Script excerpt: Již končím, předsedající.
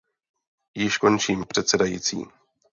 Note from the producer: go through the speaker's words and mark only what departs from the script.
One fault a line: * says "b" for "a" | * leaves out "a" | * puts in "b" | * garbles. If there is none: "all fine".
all fine